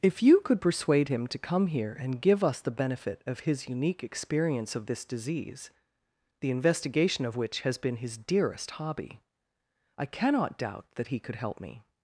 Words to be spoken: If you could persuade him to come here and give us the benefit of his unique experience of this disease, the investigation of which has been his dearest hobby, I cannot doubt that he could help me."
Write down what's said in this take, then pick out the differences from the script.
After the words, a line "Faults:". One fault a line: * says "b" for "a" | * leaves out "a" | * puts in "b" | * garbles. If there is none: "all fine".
If you could persuade him to come here and give us the benefit of his unique experience of this disease, the investigation of which has been his dearest hobby, I cannot doubt that he could help me."
Faults:
all fine